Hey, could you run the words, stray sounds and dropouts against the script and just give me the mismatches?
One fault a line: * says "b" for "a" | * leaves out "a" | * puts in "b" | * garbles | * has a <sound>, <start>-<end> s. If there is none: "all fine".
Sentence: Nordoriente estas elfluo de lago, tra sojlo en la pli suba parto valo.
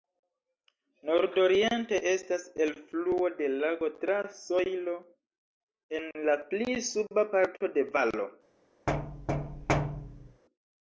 * puts in "de"
* has a thud, 8.9-10.4 s